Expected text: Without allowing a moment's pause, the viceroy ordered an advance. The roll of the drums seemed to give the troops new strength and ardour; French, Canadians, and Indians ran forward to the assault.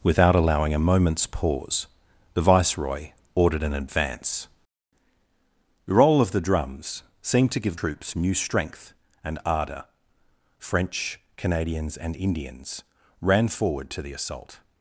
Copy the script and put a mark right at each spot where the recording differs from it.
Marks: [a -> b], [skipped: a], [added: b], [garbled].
Without allowing a moment's pause, the viceroy ordered an advance. The roll of the drums seemed to give [skipped: the] troops new strength and ardour; French, Canadians, and Indians ran forward to the assault.